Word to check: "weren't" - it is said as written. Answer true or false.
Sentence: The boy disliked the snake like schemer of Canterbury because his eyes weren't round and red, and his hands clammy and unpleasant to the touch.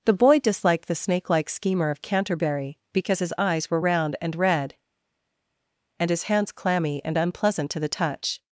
false